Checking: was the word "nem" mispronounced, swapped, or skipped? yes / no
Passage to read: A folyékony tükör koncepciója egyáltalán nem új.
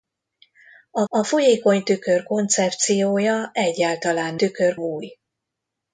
yes